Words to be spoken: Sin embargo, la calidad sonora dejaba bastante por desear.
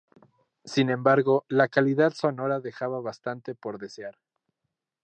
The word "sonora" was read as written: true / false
true